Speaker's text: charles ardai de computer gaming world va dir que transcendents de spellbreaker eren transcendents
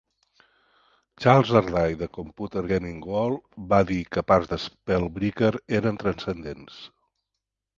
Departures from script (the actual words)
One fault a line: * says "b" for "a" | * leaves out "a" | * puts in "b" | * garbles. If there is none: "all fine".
* says "parts" for "transcendents"